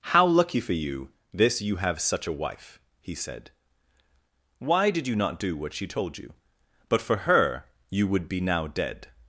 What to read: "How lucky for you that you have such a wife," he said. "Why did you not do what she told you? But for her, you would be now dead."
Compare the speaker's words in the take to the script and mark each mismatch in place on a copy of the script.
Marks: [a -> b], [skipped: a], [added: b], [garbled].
"How lucky for you [that -> this] you have such a wife," he said. "Why did you not do what she told you? But for her, you would be now dead."